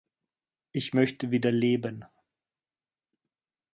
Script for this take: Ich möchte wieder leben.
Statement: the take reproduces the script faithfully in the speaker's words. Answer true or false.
true